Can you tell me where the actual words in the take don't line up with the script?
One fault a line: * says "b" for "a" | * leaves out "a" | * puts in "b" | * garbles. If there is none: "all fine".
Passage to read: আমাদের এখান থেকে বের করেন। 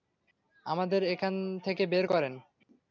all fine